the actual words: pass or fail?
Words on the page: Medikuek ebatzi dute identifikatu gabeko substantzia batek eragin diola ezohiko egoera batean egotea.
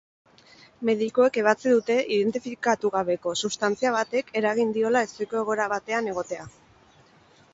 pass